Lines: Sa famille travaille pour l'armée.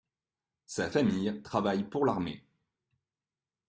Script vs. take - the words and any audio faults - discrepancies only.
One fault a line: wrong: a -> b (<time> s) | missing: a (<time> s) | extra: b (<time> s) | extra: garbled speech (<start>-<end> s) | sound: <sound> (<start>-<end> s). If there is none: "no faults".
no faults